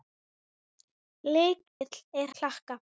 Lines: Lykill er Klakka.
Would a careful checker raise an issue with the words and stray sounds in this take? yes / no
yes